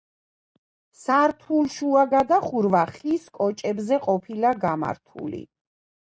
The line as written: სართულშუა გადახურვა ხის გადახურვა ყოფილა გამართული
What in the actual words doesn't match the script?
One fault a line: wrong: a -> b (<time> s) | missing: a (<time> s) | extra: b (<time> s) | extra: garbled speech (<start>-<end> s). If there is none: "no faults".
wrong: გადახურვა -> კოჭებზე (3.4 s)